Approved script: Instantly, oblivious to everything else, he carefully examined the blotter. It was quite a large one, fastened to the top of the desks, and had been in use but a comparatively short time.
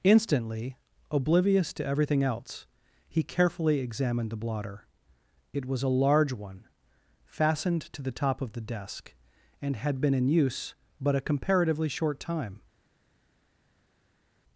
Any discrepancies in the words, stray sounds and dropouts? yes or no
yes